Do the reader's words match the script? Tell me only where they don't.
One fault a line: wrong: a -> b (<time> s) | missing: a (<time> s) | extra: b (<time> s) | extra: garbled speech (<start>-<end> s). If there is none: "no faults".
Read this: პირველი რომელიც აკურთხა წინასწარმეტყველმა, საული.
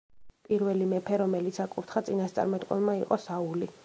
extra: მეფე (0.9 s)
extra: იყო (3.0 s)